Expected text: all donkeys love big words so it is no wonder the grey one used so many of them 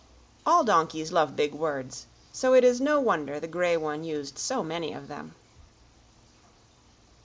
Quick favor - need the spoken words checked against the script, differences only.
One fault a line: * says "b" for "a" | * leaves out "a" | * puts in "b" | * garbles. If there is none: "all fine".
all fine